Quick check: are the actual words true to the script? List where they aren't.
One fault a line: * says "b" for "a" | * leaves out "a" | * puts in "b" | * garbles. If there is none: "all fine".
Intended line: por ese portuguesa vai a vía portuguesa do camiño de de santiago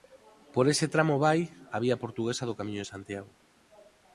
* says "tramo" for "portuguesa"
* leaves out "de"